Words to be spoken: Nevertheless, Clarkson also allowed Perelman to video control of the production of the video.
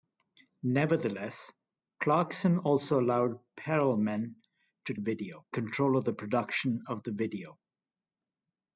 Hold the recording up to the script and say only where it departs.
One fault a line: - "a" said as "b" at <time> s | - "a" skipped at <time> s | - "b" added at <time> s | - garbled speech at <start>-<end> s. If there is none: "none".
none